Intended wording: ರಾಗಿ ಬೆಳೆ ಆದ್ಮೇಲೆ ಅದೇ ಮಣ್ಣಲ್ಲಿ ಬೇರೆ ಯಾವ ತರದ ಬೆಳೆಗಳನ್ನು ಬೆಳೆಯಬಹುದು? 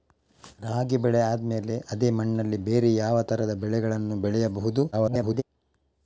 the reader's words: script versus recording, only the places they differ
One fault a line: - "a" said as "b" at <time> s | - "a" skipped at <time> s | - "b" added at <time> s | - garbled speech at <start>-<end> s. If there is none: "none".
- garbled speech at 4.9-5.4 s